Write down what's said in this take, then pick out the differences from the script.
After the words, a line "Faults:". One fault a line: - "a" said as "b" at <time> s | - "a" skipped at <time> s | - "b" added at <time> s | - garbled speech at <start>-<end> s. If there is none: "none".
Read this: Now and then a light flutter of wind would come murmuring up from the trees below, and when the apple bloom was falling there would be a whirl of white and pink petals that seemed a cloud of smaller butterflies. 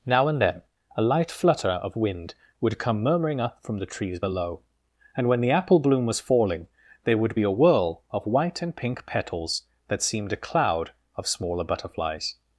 Now and then a light flutter of wind would come murmuring up from the trees below, and when the apple bloom was falling there would be a whirl of white and pink petals that seemed a cloud of smaller butterflies.
Faults:
none